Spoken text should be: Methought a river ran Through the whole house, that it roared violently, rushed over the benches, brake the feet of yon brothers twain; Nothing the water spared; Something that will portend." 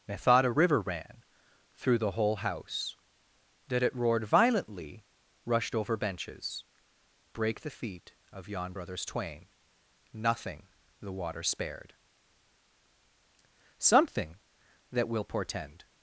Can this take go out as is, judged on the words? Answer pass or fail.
fail